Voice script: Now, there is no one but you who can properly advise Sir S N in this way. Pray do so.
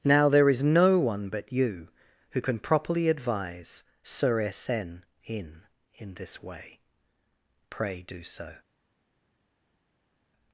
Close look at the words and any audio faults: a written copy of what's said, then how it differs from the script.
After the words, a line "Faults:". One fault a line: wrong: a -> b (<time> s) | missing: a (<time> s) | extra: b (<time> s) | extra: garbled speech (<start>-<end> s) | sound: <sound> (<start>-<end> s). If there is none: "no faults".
Now, there is no one but you who can properly advise Sir S N in in this way. Pray do so.
Faults:
extra: in (5.9 s)